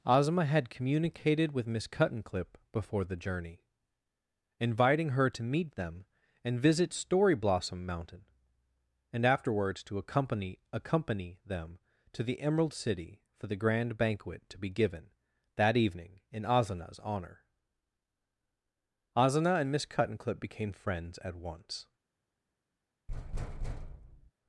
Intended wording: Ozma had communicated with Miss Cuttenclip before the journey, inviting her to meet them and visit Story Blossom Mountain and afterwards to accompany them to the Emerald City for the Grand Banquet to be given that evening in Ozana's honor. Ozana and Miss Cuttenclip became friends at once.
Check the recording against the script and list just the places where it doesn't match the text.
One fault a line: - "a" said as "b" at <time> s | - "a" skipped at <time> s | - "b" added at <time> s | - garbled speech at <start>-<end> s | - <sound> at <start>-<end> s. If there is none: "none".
- "accompany" added at 10.7 s
- thud at 23.1-24.3 s